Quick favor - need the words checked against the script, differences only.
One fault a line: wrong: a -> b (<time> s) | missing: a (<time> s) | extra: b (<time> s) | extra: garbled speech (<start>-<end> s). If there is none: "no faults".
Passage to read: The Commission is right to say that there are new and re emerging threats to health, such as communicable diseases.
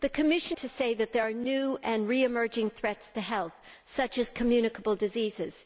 missing: is right (0.6 s)